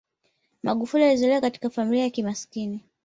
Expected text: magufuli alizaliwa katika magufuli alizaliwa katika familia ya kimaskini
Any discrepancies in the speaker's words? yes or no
yes